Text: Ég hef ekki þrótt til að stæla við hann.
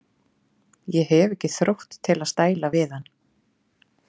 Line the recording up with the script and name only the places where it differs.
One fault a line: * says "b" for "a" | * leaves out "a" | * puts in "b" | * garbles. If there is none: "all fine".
all fine